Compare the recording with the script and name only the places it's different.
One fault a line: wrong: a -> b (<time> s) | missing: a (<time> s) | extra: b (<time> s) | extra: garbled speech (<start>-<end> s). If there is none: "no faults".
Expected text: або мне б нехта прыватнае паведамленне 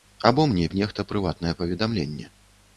no faults